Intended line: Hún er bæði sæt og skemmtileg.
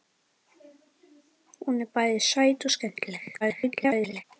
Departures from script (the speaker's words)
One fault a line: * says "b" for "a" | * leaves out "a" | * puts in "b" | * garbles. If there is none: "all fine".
* garbles